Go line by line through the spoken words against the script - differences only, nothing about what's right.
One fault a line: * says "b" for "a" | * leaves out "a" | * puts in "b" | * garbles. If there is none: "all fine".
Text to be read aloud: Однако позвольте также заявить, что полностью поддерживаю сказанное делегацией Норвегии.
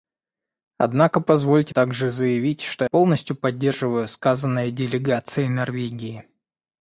all fine